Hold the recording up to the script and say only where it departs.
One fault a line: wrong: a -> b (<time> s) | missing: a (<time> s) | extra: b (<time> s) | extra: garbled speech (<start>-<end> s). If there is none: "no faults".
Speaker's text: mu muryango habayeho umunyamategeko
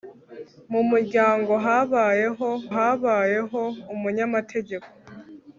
extra: habayeho (2.8 s)